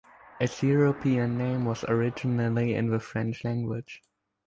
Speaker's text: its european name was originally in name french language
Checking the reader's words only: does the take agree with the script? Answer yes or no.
no